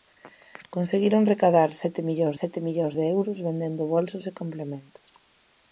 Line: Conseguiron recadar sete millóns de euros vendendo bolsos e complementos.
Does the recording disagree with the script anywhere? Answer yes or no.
yes